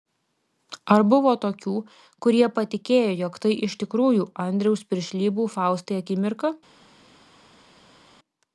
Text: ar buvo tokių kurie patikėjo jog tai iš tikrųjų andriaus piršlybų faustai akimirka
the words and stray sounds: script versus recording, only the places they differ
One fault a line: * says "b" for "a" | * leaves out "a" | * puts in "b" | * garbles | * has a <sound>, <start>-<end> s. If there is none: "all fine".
all fine